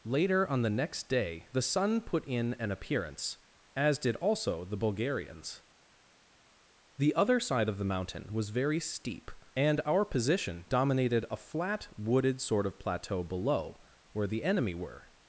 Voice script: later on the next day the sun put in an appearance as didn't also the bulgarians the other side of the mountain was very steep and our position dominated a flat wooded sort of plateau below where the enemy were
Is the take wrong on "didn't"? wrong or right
wrong